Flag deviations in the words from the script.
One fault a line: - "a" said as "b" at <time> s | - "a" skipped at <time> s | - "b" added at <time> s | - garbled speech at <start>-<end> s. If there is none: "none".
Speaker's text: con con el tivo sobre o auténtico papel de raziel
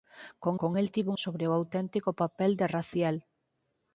none